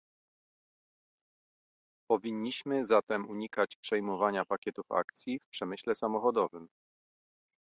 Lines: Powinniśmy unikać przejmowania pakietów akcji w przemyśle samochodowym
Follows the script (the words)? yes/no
no